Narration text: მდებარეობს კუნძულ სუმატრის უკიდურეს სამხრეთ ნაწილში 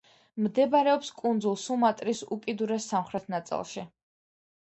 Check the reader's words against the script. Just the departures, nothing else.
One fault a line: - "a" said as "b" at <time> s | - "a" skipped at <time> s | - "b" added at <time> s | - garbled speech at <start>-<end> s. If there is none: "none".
none